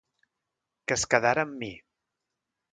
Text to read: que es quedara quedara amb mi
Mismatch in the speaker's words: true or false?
true